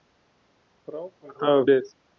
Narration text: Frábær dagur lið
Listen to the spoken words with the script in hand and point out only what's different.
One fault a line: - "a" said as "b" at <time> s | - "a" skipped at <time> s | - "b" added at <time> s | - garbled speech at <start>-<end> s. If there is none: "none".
none